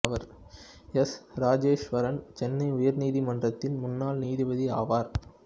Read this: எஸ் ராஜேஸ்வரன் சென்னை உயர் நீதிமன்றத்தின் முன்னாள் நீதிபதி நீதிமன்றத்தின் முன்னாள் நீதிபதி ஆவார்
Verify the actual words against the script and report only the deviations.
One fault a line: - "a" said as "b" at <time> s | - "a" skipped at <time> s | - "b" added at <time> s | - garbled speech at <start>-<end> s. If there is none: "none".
- "நீதிமன்றத்தின் முன்னாள் நீதிபதி" skipped at 4.7 s